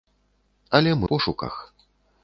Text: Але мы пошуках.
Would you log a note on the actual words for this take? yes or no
no